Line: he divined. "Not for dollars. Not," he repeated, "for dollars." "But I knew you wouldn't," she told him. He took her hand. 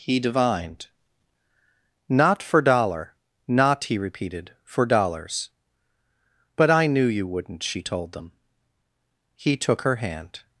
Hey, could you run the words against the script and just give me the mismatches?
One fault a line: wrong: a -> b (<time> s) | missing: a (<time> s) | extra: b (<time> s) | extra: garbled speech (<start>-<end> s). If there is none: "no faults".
wrong: dollars -> dollar (2.6 s)
wrong: him -> them (8.1 s)